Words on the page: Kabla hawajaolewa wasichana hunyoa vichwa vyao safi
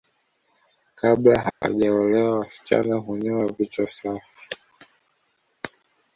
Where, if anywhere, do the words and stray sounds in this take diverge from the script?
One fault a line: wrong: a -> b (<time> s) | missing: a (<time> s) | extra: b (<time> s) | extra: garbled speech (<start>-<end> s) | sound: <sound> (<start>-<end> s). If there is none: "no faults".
sound: dropout (1.5-1.6 s)
missing: vyao (3.9 s)